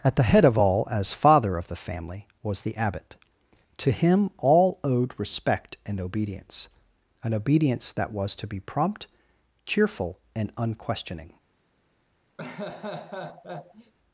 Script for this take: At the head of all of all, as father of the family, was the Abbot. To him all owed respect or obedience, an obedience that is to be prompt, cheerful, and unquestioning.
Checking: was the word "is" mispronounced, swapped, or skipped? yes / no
yes